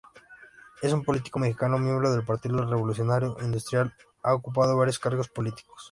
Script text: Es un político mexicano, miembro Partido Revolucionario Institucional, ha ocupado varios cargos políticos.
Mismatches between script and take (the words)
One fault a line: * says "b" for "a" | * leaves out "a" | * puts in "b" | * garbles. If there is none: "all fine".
* puts in "del"